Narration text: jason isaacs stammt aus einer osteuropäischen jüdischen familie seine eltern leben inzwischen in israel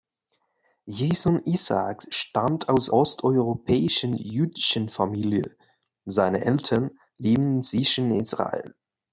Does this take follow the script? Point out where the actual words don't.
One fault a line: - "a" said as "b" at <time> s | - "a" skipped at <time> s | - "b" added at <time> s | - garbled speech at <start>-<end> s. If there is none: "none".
- "einer" skipped at 2.9 s
- "in" skipped at 8.1 s